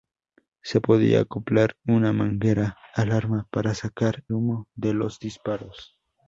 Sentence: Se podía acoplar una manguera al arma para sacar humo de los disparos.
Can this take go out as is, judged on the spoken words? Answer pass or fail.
pass